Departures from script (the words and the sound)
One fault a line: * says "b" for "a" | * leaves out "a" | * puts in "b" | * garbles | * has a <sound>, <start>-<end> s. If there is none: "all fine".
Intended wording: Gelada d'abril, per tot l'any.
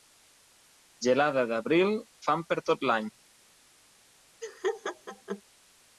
* puts in "fam"
* has a laugh, 4.4-5.4 s